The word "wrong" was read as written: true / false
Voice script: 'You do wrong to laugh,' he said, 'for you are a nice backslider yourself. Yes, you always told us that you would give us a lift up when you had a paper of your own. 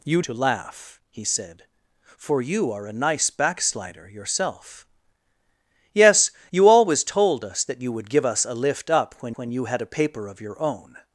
false